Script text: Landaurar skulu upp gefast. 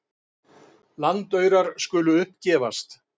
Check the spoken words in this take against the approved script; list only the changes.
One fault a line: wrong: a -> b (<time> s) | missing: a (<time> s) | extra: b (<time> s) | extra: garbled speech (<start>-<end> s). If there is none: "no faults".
no faults